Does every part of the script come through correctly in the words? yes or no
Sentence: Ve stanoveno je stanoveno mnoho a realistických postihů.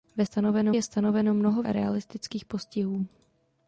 yes